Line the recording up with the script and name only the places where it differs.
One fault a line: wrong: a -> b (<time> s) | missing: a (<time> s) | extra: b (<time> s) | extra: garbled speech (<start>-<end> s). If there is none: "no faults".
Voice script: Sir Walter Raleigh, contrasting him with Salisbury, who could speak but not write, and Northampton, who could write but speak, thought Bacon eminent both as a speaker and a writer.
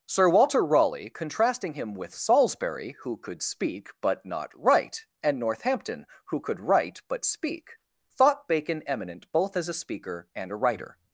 no faults